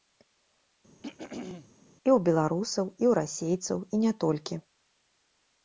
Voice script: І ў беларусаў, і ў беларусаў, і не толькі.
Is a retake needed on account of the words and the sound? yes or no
yes